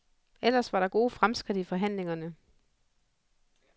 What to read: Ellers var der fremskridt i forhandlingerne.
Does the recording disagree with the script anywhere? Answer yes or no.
yes